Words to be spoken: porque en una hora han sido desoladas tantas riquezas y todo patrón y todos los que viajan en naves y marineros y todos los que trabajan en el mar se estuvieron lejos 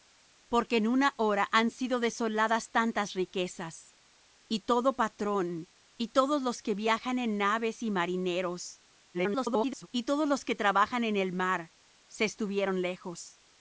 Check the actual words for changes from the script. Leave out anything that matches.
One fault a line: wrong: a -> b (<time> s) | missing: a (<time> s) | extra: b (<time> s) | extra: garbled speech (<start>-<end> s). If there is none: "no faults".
extra: garbled speech (9.1-9.9 s)